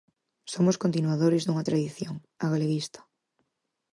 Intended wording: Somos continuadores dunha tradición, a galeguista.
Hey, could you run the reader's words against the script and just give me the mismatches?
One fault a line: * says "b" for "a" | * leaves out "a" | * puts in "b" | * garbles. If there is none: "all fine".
all fine